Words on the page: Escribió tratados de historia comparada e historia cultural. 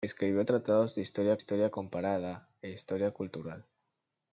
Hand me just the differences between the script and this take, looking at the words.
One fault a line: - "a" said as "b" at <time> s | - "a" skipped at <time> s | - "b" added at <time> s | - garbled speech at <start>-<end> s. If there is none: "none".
- "historia" added at 1.4 s